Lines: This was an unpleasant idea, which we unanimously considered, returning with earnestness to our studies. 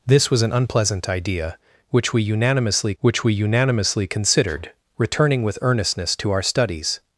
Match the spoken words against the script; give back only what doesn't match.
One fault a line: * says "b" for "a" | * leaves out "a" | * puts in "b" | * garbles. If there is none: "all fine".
* puts in "which we unanimously"